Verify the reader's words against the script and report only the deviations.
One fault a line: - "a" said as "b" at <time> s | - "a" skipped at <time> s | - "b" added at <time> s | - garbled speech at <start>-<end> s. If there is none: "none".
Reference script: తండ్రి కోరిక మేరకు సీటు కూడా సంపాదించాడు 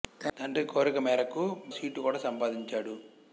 none